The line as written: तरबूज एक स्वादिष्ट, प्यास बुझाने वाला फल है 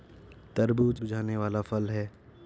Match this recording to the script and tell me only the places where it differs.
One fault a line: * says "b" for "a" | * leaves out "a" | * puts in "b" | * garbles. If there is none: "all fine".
* leaves out "एक स्वादिष्ट प्यास"